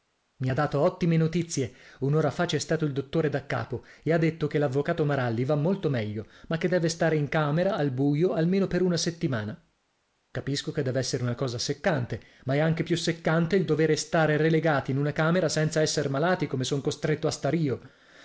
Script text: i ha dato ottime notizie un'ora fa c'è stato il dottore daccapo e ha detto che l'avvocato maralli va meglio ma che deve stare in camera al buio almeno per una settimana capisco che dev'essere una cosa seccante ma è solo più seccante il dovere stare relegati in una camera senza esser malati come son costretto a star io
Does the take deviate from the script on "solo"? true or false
true